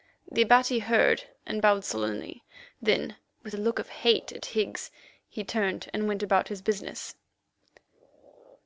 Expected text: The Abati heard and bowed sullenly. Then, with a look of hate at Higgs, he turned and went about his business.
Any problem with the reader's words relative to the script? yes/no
no